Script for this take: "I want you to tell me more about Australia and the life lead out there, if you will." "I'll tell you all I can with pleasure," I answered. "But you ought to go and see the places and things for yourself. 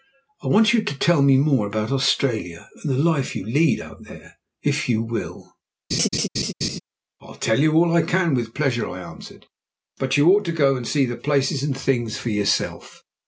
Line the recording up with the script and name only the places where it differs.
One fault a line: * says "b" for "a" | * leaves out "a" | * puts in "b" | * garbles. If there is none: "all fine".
* puts in "you"